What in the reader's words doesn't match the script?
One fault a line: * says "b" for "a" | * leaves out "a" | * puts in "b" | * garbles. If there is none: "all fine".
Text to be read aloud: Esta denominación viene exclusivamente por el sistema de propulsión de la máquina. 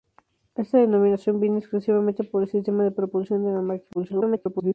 * garbles